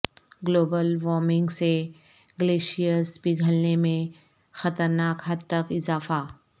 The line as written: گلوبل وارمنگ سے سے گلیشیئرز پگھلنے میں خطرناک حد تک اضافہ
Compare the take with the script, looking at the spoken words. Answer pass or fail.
fail